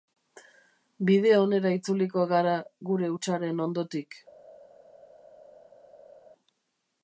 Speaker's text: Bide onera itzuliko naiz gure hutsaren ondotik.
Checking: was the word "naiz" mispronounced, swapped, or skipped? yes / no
yes